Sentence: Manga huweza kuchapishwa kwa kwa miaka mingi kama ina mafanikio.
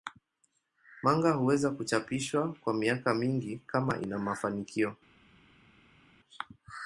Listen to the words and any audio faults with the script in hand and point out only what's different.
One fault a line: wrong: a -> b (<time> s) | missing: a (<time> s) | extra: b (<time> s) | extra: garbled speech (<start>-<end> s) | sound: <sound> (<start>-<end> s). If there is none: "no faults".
missing: kwa (2.7 s)